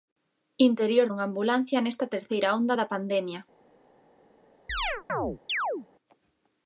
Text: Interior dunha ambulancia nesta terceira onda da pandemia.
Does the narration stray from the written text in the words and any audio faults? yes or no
yes